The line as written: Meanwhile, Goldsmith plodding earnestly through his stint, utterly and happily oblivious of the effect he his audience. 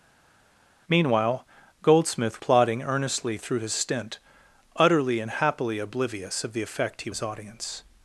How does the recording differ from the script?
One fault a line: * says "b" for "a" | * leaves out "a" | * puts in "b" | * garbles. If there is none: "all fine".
all fine